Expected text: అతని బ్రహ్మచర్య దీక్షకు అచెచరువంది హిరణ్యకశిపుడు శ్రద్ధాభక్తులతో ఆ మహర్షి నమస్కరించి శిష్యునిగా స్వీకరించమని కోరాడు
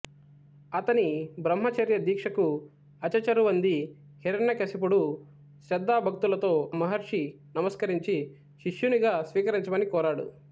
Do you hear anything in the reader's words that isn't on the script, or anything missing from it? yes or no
yes